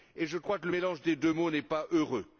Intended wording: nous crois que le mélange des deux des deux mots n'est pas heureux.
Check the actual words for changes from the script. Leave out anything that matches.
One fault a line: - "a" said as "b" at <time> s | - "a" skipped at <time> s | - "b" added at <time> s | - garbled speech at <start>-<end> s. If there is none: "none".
- "nous" said as "je" at 0.1 s
- "des deux" skipped at 1.3 s